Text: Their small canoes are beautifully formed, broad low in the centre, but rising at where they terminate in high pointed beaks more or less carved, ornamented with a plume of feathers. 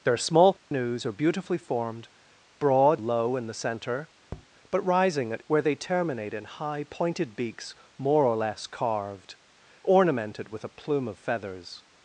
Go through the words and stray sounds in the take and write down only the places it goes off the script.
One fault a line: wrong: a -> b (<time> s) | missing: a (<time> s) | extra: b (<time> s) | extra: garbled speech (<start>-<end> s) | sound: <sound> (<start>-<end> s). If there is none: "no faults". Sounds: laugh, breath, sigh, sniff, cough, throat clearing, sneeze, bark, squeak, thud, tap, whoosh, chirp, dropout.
sound: dropout (0.6-0.7 s)
sound: tap (4.3-4.5 s)